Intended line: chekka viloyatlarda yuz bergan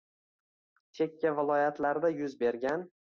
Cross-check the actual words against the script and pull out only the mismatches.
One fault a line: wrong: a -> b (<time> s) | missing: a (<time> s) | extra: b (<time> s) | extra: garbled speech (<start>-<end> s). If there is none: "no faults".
no faults